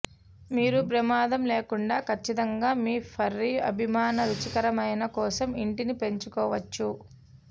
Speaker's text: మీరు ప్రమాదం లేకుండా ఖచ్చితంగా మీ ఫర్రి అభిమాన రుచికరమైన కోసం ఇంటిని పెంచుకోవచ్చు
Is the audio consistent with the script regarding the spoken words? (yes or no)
yes